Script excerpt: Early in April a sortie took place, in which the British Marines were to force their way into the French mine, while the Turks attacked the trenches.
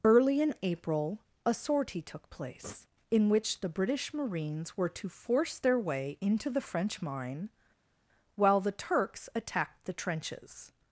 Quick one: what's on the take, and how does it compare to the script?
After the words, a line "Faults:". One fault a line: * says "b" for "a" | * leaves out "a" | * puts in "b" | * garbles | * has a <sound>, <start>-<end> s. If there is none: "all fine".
Early in April a sortie took place, in which the British Marines were to force their way into the French mine, while the Turks attacked the trenches.
Faults:
all fine